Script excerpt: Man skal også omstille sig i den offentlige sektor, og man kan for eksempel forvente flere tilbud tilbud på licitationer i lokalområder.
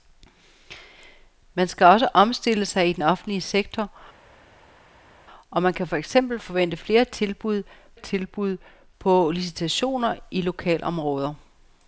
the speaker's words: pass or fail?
pass